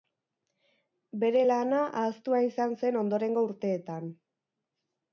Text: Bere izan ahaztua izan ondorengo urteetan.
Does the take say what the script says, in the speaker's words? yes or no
no